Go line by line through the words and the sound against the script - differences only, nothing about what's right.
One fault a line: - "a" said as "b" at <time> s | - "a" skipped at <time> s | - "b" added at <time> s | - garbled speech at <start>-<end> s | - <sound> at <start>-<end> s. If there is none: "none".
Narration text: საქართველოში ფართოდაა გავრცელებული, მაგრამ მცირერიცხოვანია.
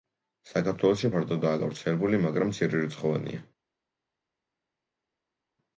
none